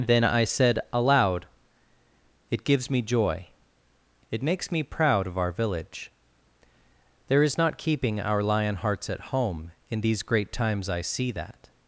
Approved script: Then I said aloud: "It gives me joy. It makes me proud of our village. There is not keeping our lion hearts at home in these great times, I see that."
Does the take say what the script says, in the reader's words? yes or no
yes